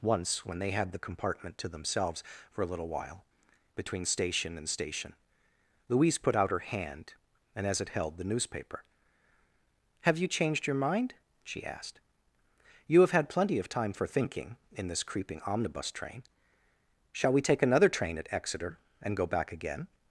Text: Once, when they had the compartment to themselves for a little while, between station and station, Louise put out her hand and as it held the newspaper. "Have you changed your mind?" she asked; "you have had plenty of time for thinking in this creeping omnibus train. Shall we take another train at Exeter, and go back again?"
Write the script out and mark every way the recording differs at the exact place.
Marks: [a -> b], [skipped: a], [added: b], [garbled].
Once, when they had the compartment to themselves for a little while, between station and station, Louise put out her hand and as it held the newspaper. "Have you changed your mind?" she asked; "you have had plenty of time for thinking in this creeping omnibus train. Shall we take another train at Exeter, and go back again?"